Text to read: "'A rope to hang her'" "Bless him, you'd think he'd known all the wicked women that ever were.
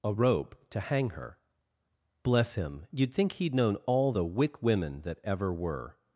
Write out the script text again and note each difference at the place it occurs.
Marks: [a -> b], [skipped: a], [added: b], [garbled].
"'A rope to hang her'" "Bless him, you'd think he'd known all the [wicked -> wick] women that ever were.